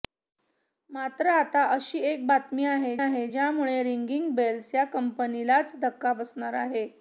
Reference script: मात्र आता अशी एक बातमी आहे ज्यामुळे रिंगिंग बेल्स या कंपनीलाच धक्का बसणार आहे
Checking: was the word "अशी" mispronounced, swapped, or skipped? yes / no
no